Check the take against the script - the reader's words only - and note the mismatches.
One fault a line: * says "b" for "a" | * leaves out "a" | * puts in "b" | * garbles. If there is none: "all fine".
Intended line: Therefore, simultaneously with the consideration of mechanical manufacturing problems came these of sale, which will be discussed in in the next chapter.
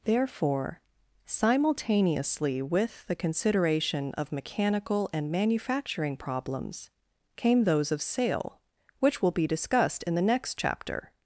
* puts in "and"
* says "those" for "these"
* leaves out "in"